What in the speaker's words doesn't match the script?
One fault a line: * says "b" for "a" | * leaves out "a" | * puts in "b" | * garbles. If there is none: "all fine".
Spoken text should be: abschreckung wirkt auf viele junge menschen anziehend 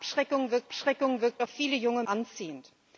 * puts in "abschreckung wirkt"
* leaves out "menschen"